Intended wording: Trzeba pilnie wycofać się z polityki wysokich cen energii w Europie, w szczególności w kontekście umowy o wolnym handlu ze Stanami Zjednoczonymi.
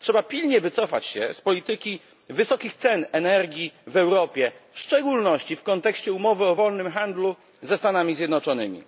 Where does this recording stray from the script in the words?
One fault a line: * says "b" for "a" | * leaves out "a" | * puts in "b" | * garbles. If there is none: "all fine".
all fine